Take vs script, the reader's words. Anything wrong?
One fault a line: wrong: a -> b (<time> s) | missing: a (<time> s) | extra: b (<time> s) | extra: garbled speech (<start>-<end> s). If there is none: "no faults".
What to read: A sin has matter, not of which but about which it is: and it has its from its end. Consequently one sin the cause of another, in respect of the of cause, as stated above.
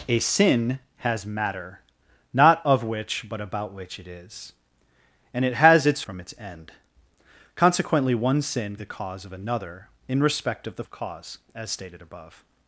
no faults